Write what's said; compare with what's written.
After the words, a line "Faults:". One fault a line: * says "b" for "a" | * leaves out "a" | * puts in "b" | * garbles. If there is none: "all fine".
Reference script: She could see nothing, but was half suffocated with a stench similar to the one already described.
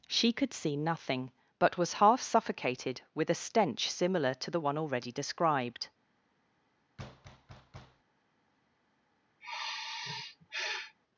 She could see nothing, but was half suffocated with a stench similar to the one already described.
Faults:
all fine